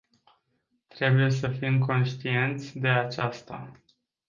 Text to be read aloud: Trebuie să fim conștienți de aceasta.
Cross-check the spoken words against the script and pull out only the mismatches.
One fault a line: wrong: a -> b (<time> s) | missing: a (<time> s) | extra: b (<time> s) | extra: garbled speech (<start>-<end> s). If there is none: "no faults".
no faults